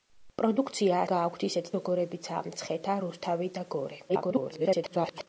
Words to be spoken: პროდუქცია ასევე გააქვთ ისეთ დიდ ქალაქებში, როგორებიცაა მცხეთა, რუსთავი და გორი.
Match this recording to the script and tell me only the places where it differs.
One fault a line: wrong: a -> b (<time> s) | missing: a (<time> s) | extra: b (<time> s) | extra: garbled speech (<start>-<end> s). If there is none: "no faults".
missing: ასევე (1.0 s)
missing: დიდ ქალაქებში (1.7 s)
extra: garbled speech (4.1-5.3 s)